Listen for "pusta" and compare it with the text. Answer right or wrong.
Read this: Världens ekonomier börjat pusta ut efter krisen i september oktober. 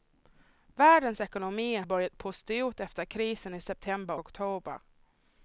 right